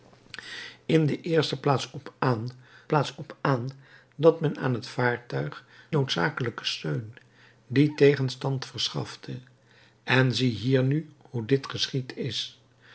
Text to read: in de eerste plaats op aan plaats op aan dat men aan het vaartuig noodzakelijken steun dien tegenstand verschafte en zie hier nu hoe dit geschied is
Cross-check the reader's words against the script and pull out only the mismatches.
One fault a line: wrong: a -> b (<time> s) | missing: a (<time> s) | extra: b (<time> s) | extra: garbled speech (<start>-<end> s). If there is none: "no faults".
no faults